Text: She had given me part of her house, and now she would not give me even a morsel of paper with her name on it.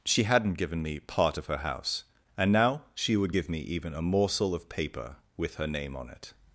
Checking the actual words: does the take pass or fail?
fail